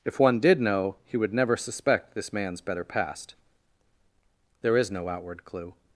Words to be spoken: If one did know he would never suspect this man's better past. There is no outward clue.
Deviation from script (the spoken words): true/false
false